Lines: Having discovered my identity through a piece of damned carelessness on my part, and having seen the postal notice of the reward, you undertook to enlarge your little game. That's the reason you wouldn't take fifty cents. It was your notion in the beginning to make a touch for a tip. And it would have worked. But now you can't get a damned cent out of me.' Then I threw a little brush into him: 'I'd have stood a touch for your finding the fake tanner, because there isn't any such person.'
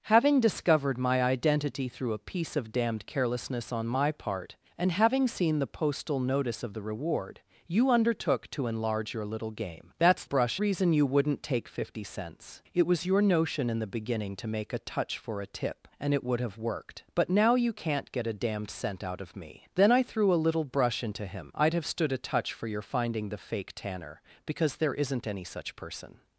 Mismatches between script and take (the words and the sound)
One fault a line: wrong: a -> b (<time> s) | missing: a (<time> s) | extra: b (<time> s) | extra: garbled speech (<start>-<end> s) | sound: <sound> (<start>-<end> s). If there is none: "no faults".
wrong: the -> brush (10.2 s)